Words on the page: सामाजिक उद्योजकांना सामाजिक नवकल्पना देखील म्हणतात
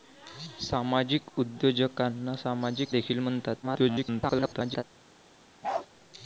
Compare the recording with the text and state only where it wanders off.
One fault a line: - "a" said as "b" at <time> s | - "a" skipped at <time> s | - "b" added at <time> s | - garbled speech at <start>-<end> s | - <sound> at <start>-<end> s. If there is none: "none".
- "नवकल्पना" skipped at 3.0 s
- garbled speech at 3.6-4.8 s
- bark at 5.6-5.9 s